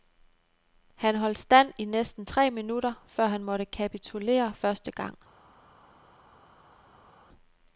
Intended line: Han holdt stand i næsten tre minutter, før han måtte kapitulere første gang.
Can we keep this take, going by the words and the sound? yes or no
yes